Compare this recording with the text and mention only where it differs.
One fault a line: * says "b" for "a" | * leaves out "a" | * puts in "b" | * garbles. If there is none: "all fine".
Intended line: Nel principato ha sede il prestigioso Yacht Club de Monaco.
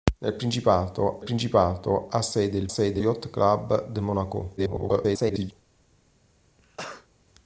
* puts in "principato"
* says "sede" for "prestigioso"
* garbles